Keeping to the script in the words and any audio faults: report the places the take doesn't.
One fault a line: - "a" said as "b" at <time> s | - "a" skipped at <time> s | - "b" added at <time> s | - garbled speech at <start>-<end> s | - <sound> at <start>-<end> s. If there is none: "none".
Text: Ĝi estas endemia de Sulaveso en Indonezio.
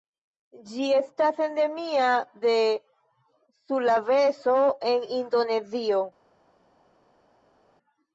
none